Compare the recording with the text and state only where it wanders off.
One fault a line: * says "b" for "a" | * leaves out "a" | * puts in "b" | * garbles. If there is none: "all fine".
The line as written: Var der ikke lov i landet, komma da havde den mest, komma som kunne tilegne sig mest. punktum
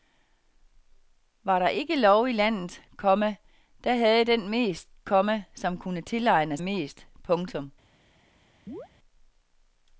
* leaves out "sig"